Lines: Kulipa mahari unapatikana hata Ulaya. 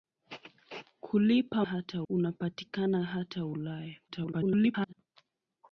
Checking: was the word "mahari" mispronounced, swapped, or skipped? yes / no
yes